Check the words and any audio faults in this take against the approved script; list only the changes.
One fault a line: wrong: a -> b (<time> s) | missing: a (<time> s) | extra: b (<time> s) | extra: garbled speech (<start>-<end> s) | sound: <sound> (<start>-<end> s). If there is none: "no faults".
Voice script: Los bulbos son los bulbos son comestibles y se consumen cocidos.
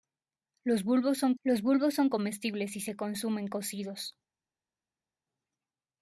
no faults